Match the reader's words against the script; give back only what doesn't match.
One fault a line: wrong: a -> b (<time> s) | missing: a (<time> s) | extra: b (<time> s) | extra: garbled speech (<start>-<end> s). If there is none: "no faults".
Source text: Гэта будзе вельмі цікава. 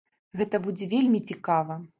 no faults